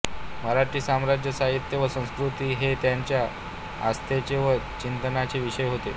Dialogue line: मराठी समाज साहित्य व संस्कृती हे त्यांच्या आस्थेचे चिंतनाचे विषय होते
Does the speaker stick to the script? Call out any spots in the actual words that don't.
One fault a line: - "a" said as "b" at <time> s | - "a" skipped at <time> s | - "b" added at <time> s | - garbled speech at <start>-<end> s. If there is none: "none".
- "व" added at 4.4 s